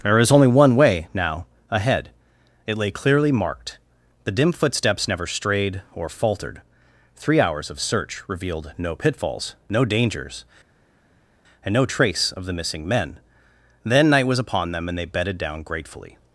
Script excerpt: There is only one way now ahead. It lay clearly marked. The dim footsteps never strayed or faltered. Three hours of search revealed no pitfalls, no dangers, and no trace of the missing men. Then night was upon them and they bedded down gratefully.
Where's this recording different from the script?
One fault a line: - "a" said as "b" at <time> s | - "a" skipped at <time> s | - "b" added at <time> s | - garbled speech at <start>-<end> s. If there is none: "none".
none